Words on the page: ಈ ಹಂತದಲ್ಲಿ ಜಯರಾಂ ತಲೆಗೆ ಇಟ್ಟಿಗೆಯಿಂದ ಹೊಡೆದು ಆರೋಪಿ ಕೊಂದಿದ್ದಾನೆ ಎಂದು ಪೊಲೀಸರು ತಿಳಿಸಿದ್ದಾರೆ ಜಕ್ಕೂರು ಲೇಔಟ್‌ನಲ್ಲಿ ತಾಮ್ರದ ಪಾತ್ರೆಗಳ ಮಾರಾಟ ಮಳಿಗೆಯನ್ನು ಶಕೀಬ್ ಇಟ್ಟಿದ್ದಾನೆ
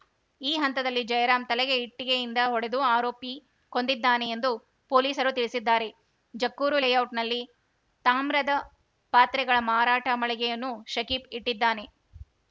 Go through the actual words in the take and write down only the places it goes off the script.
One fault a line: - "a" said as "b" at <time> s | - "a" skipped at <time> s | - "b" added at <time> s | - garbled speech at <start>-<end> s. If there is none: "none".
none